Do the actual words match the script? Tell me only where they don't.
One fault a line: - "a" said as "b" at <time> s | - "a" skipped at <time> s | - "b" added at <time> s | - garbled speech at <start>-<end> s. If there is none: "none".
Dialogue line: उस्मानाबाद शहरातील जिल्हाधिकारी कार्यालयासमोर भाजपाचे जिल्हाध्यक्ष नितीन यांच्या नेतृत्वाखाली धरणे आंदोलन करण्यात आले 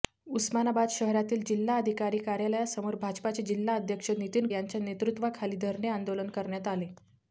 none